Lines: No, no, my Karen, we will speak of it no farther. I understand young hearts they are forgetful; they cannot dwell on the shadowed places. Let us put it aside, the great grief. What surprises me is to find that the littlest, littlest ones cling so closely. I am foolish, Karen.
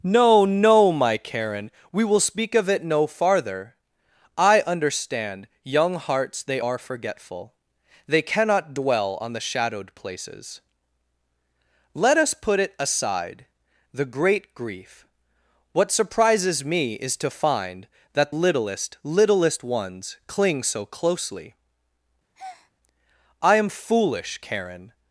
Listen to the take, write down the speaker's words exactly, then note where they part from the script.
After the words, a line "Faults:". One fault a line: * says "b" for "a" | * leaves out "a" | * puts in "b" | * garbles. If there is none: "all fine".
No, no, my Karen, we will speak of it no farther. I understand young hearts they are forgetful; they cannot dwell on the shadowed places. Let us put it aside, the great grief. What surprises me is to find that littlest, littlest ones cling so closely. I am foolish, Karen.
Faults:
* leaves out "the"